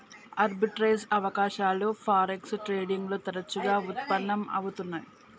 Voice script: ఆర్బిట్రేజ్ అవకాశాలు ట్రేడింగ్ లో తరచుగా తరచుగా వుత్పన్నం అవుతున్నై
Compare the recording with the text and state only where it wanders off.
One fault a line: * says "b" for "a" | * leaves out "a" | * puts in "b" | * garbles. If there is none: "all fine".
* puts in "ఫారెక్స్"
* leaves out "తరచుగా"